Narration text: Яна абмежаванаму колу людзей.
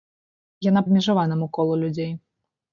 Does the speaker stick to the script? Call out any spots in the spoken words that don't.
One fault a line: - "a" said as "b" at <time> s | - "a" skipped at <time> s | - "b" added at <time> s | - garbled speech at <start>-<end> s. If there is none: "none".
none